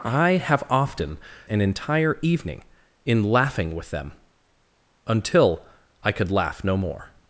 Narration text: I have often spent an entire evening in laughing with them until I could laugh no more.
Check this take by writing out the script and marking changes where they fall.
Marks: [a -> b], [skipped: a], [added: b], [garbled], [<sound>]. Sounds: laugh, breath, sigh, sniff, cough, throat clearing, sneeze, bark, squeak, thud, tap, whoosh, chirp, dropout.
I have often [skipped: spent] an entire evening in laughing with them until I could laugh no more.